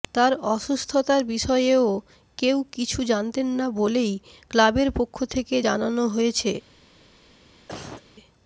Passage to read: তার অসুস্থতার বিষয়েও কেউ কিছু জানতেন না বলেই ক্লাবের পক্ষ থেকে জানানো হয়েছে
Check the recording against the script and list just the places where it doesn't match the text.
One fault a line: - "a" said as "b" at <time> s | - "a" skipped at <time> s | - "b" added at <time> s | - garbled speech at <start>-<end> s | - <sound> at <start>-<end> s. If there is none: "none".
- cough at 7.7-8.0 s